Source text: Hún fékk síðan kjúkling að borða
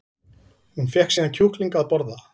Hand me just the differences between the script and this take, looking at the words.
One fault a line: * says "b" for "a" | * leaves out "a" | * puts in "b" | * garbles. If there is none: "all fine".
all fine